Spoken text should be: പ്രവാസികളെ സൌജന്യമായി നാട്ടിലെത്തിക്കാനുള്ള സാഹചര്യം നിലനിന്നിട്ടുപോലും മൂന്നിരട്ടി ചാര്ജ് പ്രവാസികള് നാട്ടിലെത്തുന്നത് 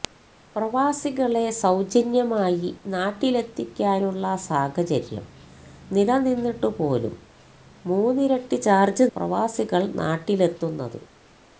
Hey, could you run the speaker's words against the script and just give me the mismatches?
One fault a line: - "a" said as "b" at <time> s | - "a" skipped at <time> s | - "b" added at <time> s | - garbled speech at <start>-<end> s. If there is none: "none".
none